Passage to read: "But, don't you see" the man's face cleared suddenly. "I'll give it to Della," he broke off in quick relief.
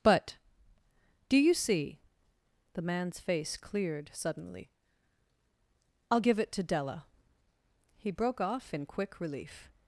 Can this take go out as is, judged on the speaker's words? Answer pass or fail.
fail